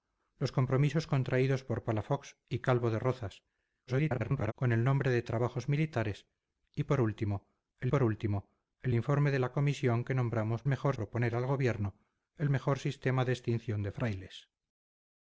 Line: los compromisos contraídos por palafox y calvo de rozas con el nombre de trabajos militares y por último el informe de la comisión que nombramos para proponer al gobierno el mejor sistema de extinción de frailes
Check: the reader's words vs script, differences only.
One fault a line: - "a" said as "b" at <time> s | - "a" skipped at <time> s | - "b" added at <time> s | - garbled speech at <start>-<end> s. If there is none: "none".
- garbled speech at 3.9-4.5 s
- "por último el" added at 7.9 s
- "para" said as "mejor" at 10.7 s